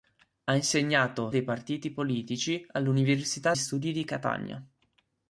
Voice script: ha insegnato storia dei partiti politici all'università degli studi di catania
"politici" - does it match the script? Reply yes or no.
yes